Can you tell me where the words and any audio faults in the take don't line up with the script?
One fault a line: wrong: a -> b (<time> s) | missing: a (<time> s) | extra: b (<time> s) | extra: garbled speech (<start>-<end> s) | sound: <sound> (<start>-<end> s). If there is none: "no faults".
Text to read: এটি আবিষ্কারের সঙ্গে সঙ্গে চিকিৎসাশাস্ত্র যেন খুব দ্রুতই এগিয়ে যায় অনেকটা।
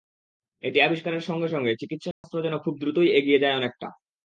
sound: dropout (2.1-2.2 s)